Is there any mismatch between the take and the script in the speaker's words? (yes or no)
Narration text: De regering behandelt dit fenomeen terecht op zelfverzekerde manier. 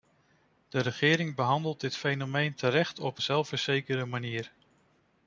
no